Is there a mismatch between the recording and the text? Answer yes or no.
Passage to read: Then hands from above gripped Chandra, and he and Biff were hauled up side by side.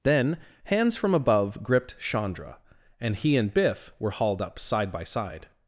no